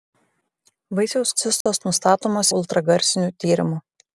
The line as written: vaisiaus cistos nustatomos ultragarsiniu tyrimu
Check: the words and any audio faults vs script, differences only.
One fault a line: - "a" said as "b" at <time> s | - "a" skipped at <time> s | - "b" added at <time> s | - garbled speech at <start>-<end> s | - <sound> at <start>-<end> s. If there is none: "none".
- dropout at 1.6-1.7 s